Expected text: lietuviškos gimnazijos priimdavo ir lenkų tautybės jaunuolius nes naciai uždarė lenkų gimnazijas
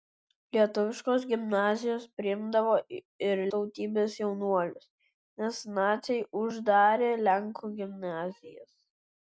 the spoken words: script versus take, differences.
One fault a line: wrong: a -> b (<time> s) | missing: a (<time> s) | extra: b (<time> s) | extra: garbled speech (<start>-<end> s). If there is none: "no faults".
missing: lenkų (3.4 s)